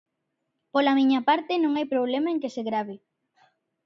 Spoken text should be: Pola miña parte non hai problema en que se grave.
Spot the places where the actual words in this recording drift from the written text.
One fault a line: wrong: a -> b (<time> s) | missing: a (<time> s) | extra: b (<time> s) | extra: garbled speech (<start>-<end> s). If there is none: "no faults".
no faults